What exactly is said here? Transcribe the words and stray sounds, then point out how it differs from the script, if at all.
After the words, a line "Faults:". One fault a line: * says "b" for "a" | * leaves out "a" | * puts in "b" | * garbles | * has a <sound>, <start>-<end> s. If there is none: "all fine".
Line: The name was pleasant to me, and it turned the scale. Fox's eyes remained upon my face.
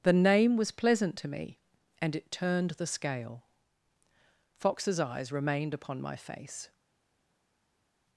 The name was pleasant to me, and it turned the scale. Fox's eyes remained upon my face.
Faults:
all fine